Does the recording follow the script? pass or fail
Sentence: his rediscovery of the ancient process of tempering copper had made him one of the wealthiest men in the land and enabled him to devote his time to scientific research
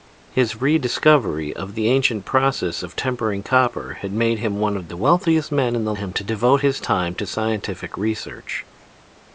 fail